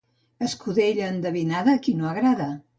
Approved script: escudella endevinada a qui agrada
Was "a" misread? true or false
false